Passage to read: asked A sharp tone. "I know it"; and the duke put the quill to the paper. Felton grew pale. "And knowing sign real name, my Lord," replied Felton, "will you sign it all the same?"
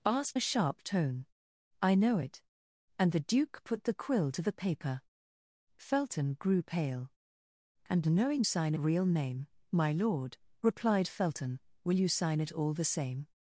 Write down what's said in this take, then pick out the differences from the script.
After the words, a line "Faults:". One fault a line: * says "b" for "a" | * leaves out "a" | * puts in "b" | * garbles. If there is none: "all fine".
asked A sharp tone. "I know it"; and the duke put the quill to the paper. Felton grew pale. "And knowing sign real name, my Lord," replied Felton, "will you sign it all the same?"
Faults:
all fine